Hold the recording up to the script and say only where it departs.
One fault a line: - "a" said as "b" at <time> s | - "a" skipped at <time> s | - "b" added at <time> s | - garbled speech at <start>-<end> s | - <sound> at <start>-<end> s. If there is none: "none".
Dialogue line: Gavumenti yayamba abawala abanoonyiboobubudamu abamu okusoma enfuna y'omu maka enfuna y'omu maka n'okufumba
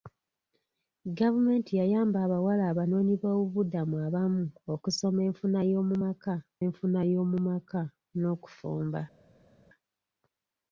none